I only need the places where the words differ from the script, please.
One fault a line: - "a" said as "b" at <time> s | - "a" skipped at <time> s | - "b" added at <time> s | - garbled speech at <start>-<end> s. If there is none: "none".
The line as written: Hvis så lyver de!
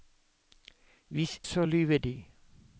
none